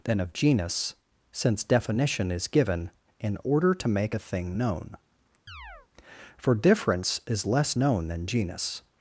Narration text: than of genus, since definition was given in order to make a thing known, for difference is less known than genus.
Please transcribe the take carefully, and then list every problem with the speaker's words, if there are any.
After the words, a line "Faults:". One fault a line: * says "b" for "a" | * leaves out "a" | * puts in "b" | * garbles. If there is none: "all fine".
than of genus, since definition is given in order to make a thing known, for difference is less known than genus.
Faults:
* says "is" for "was"